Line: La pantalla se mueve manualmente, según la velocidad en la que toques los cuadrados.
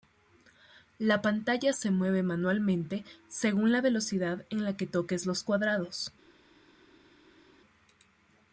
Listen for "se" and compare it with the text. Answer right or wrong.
right